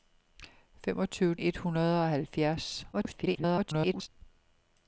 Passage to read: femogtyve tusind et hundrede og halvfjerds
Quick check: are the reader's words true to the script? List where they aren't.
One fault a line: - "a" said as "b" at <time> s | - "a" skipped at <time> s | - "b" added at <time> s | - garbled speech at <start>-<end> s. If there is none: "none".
- "tusind" skipped at 1.4 s
- garbled speech at 2.9-4.1 s